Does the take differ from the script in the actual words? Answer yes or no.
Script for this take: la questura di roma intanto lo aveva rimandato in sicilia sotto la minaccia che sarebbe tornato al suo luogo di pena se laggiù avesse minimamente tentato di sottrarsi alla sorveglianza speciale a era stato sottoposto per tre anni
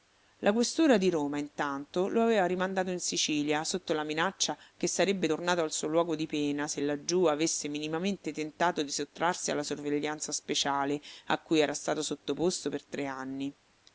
yes